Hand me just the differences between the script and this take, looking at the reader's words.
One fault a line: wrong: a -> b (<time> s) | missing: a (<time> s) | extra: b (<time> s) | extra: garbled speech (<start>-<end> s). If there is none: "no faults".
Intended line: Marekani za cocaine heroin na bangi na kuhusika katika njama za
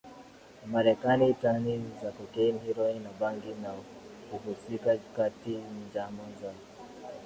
extra: tani (1.3 s)